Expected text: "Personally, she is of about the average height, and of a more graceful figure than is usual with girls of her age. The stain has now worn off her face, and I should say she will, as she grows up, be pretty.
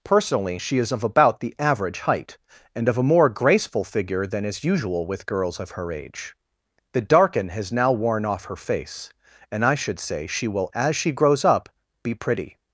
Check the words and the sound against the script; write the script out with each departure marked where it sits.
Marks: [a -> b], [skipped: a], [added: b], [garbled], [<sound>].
"Personally, she is of about the average height, and of a more graceful figure than is usual with girls of her age. The [stain -> darken] has now worn off her face, and I should say she will, as she grows up, be pretty.